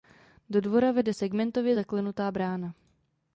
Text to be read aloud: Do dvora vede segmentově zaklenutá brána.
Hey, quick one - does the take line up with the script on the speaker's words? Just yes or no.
yes